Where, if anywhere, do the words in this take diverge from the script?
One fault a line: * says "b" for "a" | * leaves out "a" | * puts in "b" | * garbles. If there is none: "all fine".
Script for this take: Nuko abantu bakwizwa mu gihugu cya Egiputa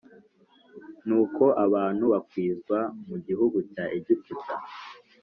all fine